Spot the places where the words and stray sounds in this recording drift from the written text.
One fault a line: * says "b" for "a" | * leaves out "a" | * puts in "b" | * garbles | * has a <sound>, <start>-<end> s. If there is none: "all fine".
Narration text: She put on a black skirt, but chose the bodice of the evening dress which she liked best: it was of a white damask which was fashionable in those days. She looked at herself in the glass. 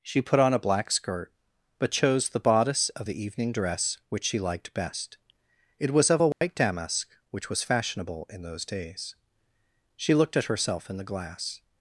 * has a dropout, 6.3-6.4 s